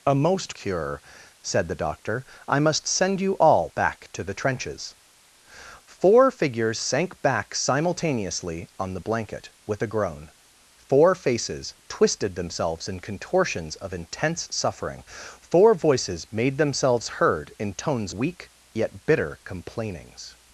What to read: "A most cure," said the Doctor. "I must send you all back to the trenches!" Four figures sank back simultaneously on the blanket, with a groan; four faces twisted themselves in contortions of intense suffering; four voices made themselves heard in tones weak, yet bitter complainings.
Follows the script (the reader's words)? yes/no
yes